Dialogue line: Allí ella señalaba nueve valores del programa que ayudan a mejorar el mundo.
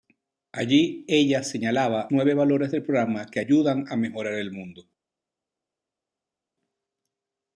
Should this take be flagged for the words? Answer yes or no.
no